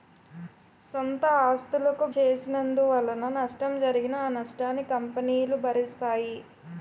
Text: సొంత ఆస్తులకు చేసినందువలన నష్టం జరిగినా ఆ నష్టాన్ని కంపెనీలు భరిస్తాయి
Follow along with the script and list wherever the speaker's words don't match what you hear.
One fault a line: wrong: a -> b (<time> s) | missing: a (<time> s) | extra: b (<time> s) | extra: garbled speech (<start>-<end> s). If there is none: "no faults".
no faults